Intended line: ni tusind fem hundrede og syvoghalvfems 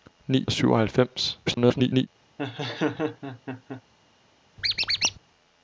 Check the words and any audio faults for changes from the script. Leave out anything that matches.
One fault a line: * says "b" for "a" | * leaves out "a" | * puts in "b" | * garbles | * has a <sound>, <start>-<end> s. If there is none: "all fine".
* leaves out "tusind fem hundrede"
* garbles
* has a laugh, 2.4-3.8 s
* has a squeak, 4.6-5.2 s